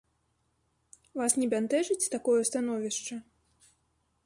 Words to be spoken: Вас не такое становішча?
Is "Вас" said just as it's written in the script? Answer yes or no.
yes